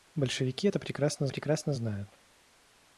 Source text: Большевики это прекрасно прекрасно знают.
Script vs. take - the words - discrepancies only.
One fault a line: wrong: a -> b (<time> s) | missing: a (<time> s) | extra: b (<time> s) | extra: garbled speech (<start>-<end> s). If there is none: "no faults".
no faults